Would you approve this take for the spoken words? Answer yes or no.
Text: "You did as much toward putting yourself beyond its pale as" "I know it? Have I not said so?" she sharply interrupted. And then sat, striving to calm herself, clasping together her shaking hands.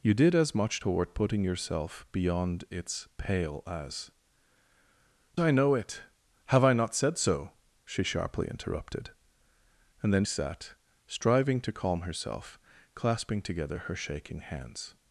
yes